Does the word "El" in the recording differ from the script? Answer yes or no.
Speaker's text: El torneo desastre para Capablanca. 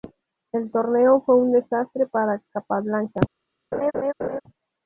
no